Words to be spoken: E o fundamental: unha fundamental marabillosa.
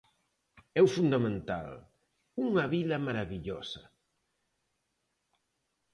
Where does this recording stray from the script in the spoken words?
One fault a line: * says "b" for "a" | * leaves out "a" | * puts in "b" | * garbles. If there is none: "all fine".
* says "vila" for "fundamental"